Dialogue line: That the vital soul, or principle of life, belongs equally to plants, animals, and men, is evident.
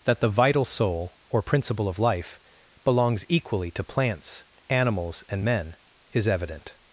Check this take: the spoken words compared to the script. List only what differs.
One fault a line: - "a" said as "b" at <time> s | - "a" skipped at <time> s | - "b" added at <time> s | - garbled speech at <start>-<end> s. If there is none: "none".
none